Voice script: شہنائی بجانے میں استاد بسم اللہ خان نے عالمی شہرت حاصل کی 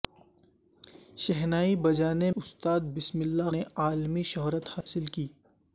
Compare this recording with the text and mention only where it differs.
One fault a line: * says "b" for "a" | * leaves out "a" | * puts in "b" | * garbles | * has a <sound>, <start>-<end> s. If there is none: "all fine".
* leaves out "میں"
* leaves out "خان"
* has a dropout, 4.8-4.9 s